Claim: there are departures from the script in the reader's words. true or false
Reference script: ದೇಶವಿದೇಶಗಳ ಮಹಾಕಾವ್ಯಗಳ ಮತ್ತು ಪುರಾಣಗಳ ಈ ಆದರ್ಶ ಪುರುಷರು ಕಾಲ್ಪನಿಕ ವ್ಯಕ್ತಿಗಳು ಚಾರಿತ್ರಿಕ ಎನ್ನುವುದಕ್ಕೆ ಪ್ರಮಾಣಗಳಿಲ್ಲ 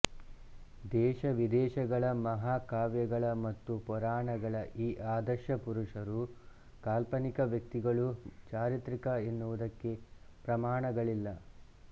false